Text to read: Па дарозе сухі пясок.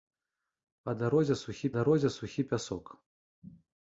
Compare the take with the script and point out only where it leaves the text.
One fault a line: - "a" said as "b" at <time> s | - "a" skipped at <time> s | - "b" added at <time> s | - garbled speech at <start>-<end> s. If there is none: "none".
- "дарозе сухі" added at 1.8 s